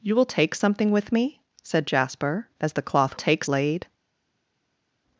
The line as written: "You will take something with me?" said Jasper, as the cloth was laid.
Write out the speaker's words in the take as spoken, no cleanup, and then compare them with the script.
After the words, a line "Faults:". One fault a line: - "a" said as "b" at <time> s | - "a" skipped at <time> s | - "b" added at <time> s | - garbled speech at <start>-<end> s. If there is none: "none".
"You will take something with me?" said Jasper, as the cloth take laid.
Faults:
- "was" said as "take" at 3.1 s